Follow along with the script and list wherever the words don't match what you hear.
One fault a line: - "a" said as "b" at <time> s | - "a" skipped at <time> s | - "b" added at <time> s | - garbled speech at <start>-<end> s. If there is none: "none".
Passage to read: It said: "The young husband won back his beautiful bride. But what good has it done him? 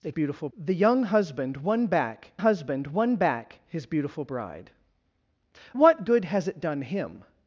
- "said" said as "beautiful" at 0.1 s
- "husband won back" added at 2.4 s
- "But" skipped at 4.7 s